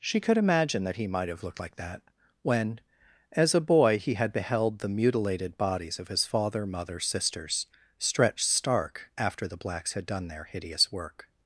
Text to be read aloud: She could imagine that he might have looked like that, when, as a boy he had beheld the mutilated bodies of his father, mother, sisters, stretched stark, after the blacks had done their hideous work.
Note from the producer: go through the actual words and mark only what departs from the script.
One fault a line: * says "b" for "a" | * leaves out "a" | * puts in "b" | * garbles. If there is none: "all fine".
all fine